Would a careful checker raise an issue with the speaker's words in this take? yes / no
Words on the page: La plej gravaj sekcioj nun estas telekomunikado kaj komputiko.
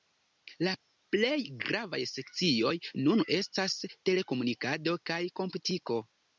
no